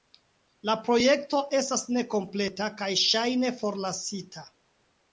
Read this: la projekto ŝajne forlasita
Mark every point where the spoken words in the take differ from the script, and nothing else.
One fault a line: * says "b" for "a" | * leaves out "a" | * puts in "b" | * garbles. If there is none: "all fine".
* puts in "estas nekompleta kaj"